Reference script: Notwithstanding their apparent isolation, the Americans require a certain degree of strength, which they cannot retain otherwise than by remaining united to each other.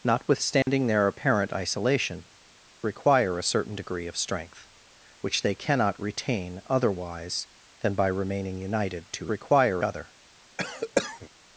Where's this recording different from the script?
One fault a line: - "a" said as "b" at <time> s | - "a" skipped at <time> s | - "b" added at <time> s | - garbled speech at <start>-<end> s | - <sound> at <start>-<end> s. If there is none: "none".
- dropout at 0.6-0.7 s
- "the Americans" skipped at 2.2 s
- "each" said as "require" at 9.3 s
- cough at 10.6-11.3 s